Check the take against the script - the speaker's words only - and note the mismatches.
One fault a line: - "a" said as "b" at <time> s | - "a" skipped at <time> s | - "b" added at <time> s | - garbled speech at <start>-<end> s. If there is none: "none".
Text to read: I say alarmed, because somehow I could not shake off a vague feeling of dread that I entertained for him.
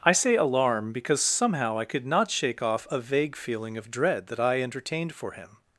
- "alarmed" said as "alarm" at 0.3 s